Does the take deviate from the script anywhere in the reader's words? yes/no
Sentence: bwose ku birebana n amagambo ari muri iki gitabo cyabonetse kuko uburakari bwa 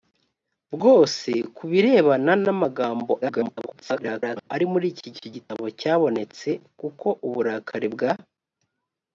yes